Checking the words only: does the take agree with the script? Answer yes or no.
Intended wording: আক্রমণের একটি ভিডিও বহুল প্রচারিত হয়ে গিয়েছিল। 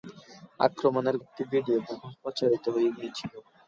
yes